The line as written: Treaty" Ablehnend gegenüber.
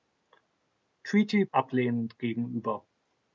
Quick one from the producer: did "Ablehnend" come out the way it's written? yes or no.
yes